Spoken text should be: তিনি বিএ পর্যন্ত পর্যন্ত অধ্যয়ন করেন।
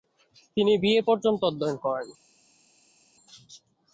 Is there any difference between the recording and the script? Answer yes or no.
yes